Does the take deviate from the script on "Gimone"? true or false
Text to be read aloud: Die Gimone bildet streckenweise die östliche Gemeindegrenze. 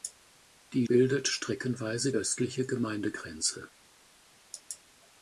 true